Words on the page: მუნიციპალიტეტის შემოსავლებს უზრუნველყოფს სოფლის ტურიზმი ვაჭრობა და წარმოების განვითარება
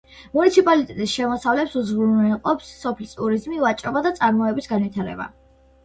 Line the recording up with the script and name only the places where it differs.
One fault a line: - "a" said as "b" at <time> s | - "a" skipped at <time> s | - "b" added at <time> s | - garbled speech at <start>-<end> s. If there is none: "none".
none